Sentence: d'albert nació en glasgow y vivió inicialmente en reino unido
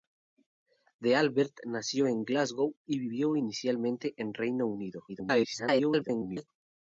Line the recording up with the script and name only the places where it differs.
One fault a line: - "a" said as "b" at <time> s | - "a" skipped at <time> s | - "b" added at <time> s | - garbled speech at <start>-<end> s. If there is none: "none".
- garbled speech at 5.1-6.5 s